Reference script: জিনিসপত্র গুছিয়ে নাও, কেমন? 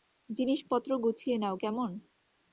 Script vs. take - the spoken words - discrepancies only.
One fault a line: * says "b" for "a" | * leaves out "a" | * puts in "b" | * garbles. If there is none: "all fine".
all fine